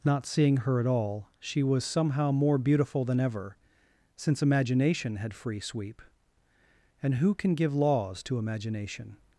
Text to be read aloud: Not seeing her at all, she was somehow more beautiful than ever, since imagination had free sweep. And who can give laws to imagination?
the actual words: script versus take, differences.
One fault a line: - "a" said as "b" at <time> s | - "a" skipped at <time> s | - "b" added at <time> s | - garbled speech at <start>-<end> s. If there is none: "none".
none